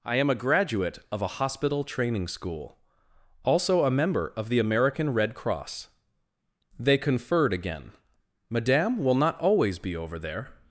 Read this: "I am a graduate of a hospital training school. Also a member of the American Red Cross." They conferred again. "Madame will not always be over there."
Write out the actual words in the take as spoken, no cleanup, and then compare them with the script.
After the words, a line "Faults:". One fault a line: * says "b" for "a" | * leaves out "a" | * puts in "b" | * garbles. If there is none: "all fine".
"I am a graduate of a hospital training school. Also a member of the American Red Cross." They conferred again. "Madame will not always be over there."
Faults:
all fine